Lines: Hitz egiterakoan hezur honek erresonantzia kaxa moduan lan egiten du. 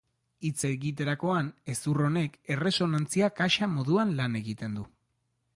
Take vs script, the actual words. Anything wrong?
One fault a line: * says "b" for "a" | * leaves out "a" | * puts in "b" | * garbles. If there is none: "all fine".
all fine